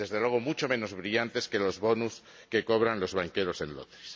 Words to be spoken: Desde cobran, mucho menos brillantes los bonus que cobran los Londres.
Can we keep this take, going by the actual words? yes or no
no